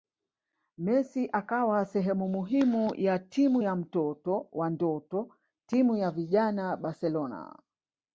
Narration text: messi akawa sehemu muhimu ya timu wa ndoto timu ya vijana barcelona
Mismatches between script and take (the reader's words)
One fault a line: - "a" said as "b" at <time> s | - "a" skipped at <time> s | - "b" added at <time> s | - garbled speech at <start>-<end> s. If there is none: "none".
- "ya mtoto" added at 3.6 s